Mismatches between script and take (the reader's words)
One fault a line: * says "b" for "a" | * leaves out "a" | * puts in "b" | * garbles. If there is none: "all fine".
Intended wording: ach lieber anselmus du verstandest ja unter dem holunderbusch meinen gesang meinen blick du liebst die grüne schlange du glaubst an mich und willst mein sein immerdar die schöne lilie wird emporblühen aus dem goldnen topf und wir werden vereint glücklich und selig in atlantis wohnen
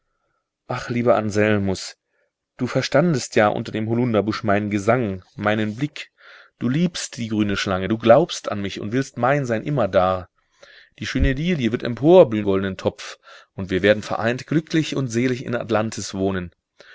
* leaves out "aus dem"